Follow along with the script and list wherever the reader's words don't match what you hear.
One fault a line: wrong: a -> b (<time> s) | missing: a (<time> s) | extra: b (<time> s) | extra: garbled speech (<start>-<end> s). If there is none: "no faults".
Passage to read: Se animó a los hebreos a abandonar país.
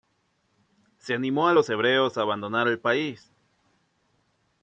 extra: el (2.7 s)